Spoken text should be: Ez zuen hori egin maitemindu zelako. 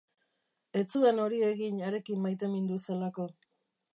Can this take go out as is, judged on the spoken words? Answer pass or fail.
fail